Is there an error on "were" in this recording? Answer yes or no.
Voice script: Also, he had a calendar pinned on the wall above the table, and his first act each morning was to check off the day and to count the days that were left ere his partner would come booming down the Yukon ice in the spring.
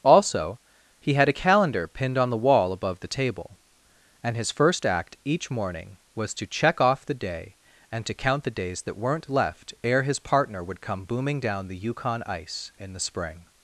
yes